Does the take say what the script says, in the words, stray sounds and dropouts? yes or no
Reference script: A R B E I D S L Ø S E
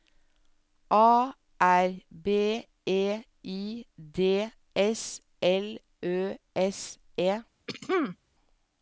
no